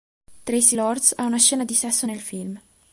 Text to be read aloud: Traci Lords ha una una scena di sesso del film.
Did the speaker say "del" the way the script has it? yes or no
no